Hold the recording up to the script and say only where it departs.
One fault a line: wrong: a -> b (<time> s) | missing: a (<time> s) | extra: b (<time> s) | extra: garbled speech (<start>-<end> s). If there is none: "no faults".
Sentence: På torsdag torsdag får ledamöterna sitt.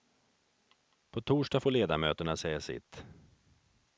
missing: torsdag (1.6 s)
extra: säga (2.4 s)